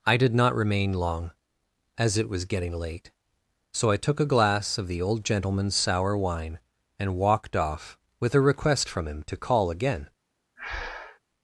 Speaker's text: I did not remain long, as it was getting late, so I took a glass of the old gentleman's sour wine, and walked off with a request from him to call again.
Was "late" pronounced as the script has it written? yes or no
yes